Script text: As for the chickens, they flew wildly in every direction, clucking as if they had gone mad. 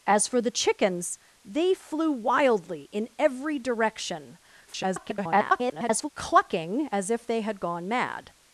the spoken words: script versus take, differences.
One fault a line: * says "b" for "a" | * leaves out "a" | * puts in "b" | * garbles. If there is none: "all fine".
* garbles